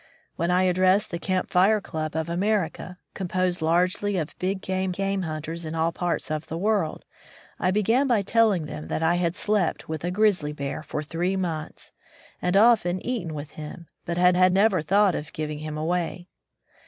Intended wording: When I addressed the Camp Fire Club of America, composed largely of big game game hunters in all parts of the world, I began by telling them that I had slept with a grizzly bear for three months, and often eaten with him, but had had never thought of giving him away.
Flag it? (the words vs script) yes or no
no